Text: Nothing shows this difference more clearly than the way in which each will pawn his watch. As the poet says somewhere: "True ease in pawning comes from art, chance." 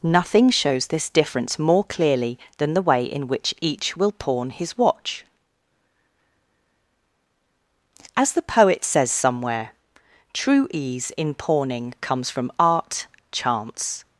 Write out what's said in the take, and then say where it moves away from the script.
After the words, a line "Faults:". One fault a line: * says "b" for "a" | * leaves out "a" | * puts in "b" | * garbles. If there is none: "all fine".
Nothing shows this difference more clearly than the way in which each will pawn his watch. As the poet says somewhere: "True ease in pawning comes from art, chance."
Faults:
all fine